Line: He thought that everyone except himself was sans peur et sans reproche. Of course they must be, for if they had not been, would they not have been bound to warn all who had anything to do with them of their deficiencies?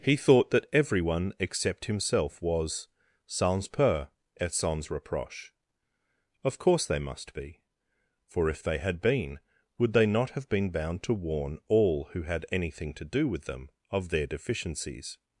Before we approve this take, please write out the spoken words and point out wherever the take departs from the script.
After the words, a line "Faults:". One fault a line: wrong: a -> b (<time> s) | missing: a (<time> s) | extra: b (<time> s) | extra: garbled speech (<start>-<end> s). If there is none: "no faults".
He thought that everyone except himself was sans peur et sans reproche. Of course they must be, for if they had been, would they not have been bound to warn all who had anything to do with them of their deficiencies?
Faults:
missing: not (9.0 s)